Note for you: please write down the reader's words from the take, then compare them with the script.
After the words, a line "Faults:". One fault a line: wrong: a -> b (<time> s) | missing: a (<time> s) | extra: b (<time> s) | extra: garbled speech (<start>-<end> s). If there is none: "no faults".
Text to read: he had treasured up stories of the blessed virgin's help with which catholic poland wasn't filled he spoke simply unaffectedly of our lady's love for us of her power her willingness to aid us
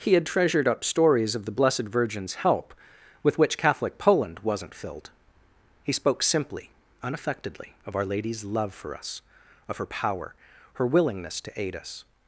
he had treasured up stories of the blessed virgin's help with which catholic poland wasn't filled he spoke simply unaffectedly of our lady's love for us of her power her willingness to aid us
Faults:
no faults